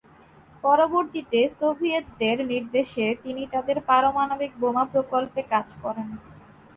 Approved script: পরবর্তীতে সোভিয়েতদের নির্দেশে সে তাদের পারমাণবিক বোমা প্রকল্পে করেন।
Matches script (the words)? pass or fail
fail